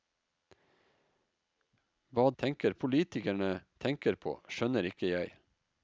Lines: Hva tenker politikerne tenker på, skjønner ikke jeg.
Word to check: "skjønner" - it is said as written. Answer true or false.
true